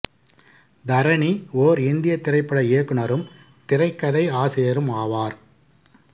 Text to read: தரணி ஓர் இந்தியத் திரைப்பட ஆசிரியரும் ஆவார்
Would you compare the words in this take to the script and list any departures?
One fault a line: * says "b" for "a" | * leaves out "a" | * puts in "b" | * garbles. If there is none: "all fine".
* puts in "இயக்குனரும் திரைக்கதை"